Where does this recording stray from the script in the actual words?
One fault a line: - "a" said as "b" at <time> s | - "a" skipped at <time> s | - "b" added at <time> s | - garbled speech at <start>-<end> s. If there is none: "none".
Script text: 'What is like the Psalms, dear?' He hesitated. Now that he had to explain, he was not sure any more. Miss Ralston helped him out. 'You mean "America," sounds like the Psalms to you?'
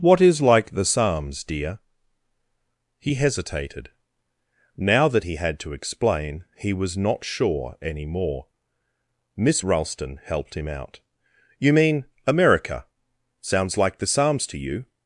none